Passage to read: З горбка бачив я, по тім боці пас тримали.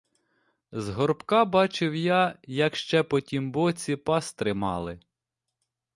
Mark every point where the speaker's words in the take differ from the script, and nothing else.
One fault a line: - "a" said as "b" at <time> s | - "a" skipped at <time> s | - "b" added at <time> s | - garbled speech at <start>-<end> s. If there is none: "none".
- "як ще" added at 2.4 s